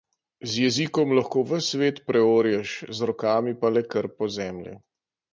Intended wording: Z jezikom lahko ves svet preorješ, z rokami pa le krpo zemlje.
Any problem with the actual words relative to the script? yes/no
no